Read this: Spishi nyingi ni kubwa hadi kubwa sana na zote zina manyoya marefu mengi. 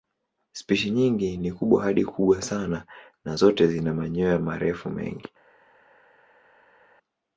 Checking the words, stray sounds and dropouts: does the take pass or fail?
pass